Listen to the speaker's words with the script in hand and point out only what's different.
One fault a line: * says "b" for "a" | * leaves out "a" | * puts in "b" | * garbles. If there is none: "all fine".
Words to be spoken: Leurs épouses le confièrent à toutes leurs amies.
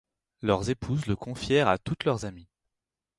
all fine